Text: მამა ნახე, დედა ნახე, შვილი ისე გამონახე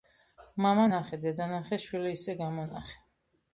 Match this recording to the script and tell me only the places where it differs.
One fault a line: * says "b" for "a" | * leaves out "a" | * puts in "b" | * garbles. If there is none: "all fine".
all fine